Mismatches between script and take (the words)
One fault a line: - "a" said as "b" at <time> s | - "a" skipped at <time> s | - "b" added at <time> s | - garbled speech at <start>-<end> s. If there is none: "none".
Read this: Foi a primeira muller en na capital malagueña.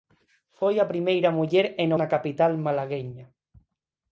none